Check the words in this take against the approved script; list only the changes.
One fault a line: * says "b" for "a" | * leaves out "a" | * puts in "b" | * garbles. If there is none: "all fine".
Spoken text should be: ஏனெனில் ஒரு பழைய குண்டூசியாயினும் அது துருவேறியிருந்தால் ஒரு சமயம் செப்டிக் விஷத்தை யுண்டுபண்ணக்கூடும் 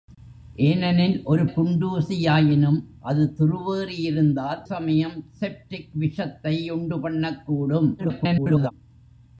* leaves out "பழைய"
* leaves out "ஒரு"
* garbles